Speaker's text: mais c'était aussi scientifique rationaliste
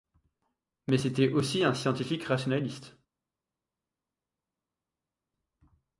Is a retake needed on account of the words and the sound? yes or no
yes